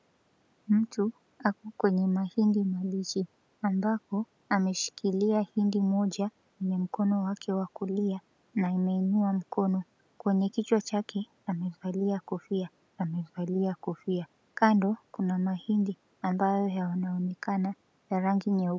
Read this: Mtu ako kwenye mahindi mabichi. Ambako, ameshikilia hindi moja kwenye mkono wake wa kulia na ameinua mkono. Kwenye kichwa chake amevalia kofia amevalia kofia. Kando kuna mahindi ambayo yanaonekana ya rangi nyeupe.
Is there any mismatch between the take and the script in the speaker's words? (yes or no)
no